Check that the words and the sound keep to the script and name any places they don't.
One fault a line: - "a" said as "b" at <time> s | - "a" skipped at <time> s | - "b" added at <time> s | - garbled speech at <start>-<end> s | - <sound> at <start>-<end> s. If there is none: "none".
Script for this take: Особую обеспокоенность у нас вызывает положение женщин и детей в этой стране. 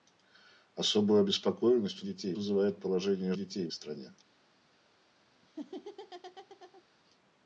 - "нас" said as "детей" at 2.0 s
- "женщин" skipped at 3.3 s
- "этой" skipped at 3.7 s
- laugh at 5.4-6.8 s